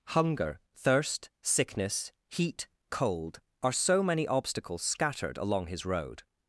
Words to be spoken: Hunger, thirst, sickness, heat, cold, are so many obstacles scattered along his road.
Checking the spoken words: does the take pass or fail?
pass